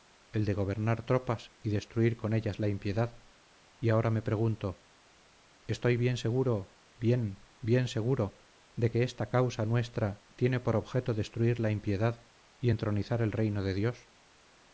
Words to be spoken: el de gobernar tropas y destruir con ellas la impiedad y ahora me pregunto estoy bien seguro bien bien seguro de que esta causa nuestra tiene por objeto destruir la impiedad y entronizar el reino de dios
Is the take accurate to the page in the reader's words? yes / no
yes